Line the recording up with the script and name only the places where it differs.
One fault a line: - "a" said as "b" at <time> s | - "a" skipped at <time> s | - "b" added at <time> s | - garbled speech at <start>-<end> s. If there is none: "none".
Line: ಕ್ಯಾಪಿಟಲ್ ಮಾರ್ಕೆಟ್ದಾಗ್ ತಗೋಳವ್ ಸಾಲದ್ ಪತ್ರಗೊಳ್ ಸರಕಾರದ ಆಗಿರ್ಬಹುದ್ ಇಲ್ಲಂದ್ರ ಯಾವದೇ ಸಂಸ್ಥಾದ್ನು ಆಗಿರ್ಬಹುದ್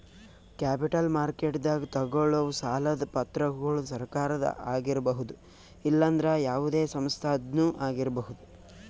none